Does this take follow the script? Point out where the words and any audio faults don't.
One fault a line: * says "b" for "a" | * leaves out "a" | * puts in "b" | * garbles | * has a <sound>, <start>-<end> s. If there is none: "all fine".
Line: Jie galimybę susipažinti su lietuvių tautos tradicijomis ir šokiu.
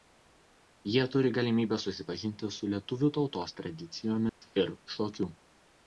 * puts in "turi"
* has a dropout, 4.3-4.4 s